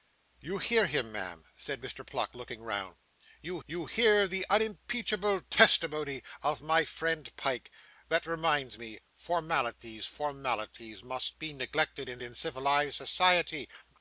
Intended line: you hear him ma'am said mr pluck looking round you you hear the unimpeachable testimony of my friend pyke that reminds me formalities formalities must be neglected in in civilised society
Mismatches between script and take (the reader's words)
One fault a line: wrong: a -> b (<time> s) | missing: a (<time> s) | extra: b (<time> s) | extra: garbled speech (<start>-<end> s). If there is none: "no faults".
no faults